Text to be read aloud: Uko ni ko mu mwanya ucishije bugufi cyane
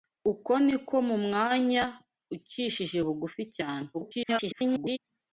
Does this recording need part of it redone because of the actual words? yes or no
yes